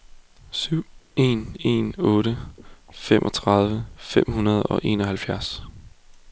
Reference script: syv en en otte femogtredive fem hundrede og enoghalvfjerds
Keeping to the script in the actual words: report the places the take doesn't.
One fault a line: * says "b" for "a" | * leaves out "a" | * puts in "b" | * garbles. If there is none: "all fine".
all fine